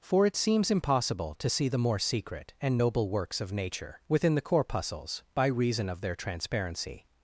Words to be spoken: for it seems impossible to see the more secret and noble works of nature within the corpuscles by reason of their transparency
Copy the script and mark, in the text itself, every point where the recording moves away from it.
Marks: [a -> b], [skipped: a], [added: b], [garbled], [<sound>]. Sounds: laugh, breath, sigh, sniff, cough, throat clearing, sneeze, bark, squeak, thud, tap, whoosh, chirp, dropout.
for it seems impossible to see the more secret and noble works of nature within the corpuscles by reason of their transparency